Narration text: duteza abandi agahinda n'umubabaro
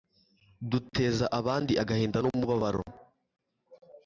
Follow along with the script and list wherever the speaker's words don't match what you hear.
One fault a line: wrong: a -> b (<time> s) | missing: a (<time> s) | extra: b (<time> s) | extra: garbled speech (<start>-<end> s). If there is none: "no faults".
no faults